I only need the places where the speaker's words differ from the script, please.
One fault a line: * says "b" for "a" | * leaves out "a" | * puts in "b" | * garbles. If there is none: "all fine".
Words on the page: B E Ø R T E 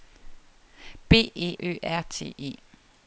all fine